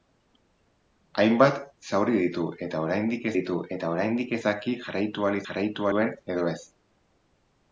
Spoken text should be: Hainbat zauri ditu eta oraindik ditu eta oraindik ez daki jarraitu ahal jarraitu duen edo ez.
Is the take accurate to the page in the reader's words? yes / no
yes